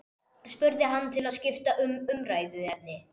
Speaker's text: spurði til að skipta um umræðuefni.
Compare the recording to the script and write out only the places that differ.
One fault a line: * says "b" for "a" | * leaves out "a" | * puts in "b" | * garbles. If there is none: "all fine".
* puts in "hann"